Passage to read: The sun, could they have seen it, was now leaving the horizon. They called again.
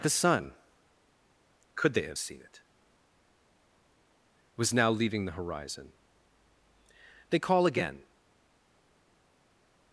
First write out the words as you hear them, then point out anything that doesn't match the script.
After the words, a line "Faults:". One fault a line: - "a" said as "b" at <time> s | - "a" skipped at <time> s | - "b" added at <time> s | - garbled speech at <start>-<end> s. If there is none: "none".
The sun, could they have seen it, was now leaving the horizon. They call again.
Faults:
- "called" said as "call" at 7.4 s